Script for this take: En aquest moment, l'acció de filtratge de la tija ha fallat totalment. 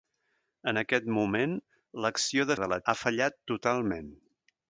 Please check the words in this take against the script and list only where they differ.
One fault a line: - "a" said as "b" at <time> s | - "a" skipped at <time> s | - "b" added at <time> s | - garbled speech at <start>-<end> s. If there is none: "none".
- "filtratge" skipped at 2.6 s
- "tija" skipped at 2.8 s